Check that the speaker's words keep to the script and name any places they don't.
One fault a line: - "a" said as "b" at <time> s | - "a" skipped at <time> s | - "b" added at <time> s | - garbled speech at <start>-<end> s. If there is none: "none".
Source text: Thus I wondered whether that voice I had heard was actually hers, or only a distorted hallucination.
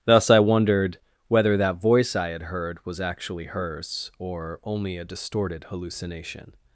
none